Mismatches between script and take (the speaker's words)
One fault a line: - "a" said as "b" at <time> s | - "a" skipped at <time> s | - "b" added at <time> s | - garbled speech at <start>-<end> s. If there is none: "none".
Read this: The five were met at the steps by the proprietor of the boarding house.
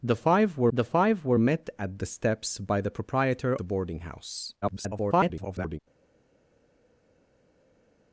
- "the five were" added at 0.7 s
- "of" skipped at 3.6 s
- garbled speech at 4.6-5.8 s